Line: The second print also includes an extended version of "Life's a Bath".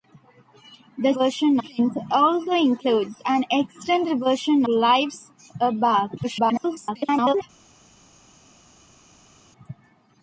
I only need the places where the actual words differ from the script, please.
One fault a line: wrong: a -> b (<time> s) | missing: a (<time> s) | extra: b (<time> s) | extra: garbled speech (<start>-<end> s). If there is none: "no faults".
wrong: second -> version (1.1 s)
missing: of (4.6 s)
extra: garbled speech (6.2-7.4 s)